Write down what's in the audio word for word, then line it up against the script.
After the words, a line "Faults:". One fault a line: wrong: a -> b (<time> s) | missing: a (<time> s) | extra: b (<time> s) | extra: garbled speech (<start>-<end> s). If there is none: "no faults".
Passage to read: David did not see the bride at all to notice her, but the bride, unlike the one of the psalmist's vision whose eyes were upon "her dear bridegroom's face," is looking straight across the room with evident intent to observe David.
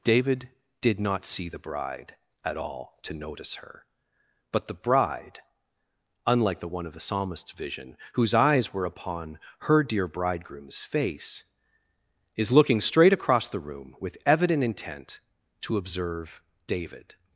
David did not see the bride at all to notice her, but the bride, unlike the one of the psalmist's vision whose eyes were upon "her dear bridegroom's face," is looking straight across the room with evident intent to observe David.
Faults:
no faults